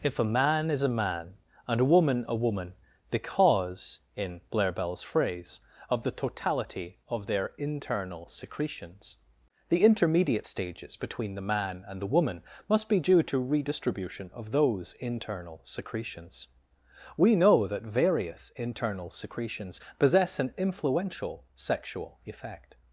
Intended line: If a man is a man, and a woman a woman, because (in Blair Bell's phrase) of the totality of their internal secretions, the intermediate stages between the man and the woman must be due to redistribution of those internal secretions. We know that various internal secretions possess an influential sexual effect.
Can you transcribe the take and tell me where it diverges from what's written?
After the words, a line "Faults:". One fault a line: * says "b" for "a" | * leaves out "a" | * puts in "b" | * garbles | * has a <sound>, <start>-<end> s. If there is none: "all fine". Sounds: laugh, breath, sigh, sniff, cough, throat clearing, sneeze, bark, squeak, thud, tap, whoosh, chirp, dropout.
If a man is a man, and a woman a woman, because (in Blair Bell's phrase) of the totality of their internal secretions, the intermediate stages between the man and the woman must be due to redistribution of those internal secretions. We know that various internal secretions possess an influential sexual effect.
Faults:
all fine